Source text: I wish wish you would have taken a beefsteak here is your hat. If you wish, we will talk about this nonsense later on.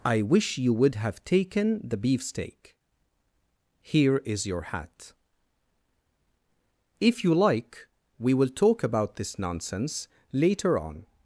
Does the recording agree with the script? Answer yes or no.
no